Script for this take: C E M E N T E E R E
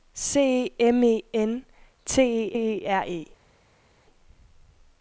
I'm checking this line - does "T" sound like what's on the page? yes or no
yes